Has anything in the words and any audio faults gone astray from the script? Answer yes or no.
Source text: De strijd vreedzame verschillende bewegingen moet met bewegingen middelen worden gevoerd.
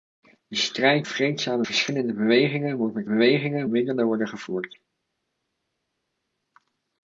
no